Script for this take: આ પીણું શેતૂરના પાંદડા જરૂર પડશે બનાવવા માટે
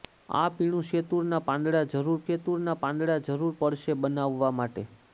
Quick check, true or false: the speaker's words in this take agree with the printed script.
false